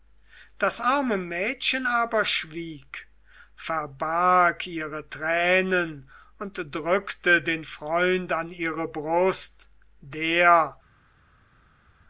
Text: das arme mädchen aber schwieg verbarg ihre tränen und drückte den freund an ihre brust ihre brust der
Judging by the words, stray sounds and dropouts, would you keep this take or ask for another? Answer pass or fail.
fail